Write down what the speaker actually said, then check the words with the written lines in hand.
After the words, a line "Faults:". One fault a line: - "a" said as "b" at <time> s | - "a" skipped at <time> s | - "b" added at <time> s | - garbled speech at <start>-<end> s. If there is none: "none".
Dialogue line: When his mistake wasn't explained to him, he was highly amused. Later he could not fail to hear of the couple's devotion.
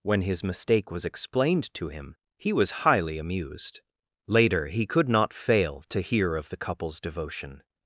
When his mistake was explained to him, he was highly amused. Later he could not fail to hear of the couple's devotion.
Faults:
- "wasn't" said as "was" at 0.9 s